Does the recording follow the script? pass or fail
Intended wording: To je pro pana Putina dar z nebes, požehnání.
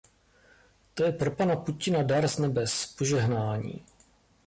pass